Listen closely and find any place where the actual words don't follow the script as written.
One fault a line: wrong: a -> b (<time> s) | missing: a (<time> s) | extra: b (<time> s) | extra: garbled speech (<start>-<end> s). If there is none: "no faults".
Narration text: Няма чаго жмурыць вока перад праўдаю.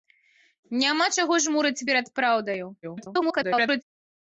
missing: вока (1.9 s)
extra: garbled speech (2.8-3.8 s)